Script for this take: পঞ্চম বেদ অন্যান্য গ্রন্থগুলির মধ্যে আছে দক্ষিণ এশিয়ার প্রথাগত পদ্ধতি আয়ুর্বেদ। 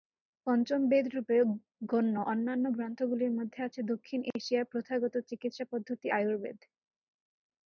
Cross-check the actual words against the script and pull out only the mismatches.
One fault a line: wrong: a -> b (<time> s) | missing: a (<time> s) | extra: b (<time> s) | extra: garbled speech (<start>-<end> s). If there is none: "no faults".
extra: রূপে গণ্য (1.1 s)
extra: চিকিৎসা (5.3 s)